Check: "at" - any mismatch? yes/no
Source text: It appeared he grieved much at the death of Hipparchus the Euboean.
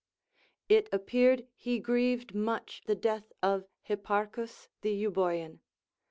yes